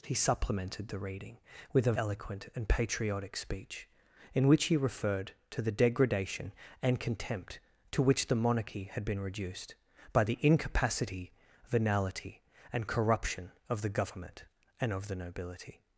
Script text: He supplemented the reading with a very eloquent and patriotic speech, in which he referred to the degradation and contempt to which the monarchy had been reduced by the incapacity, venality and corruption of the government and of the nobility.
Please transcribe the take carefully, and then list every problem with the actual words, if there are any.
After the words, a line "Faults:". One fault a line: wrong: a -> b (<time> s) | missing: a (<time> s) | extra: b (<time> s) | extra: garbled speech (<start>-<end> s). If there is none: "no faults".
He supplemented the reading with a eloquent and patriotic speech, in which he referred to the degradation and contempt to which the monarchy had been reduced by the incapacity, venality and corruption of the government and of the nobility.
Faults:
missing: very (1.9 s)